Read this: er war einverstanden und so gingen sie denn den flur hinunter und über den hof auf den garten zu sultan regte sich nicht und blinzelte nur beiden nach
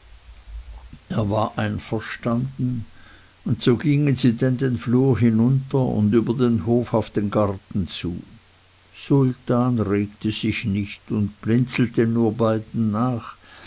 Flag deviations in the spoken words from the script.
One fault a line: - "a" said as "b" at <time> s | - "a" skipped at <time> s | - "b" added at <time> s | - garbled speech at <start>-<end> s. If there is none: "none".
none